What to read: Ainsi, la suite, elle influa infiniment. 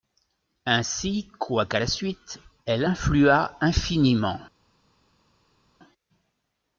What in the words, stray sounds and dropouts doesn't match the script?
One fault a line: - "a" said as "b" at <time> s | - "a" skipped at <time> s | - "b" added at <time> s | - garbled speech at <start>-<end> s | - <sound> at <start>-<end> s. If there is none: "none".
- "quoiqu'à" added at 1.4 s